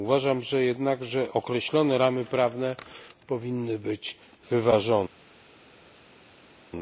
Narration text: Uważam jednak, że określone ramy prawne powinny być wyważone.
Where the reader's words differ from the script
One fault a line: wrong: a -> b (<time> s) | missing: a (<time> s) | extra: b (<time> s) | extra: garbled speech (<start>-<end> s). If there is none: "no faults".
no faults